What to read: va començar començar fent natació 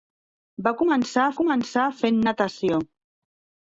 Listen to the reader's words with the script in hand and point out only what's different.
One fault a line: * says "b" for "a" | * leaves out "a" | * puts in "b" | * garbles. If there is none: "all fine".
all fine